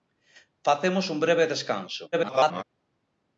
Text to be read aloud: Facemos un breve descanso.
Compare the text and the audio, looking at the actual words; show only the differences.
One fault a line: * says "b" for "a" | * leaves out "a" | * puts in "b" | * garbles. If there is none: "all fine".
* garbles